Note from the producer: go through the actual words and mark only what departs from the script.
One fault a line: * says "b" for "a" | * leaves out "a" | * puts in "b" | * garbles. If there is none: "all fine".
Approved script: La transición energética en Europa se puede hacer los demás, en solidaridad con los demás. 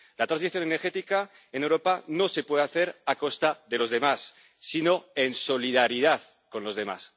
* puts in "no"
* puts in "a costa de"
* puts in "sino"